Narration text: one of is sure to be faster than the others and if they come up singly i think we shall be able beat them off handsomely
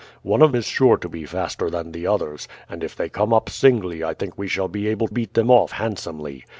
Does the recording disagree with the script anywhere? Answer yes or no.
no